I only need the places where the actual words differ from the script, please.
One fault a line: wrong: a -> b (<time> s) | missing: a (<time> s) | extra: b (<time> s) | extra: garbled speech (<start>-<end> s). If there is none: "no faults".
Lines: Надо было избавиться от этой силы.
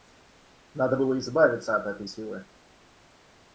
no faults